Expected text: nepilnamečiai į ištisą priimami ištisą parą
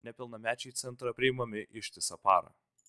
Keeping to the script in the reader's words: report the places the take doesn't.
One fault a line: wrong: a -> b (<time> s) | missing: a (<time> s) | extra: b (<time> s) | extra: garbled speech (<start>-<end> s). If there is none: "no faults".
wrong: ištisą -> centrą (0.8 s)